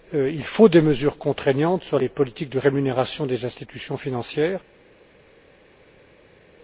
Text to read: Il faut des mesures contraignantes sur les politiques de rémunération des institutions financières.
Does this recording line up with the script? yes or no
yes